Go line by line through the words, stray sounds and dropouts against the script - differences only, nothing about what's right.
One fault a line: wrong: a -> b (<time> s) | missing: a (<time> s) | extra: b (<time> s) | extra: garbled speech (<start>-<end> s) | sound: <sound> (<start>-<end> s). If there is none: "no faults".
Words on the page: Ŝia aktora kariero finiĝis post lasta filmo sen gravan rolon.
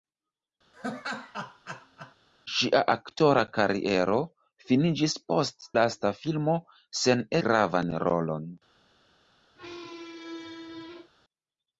sound: laugh (0.7-2.2 s)
sound: squeak (9.6-11.1 s)